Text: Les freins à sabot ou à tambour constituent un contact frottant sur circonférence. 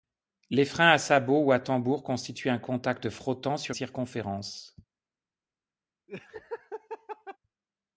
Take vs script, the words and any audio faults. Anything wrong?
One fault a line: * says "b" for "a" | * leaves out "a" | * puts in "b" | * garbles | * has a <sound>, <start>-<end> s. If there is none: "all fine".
* has a laugh, 6.1-7.4 s